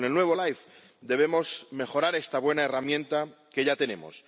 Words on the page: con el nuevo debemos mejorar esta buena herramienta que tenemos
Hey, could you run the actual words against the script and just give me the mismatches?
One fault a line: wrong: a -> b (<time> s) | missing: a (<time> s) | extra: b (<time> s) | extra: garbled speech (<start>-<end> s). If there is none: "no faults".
extra: life (0.3 s)
extra: ya (3.7 s)